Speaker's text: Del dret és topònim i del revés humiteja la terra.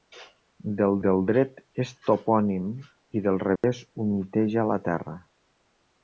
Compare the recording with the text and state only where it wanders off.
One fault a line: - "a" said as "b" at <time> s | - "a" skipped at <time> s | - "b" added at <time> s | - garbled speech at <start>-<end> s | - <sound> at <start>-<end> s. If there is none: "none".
- "del" added at 1.0 s
- dropout at 3.6-3.6 s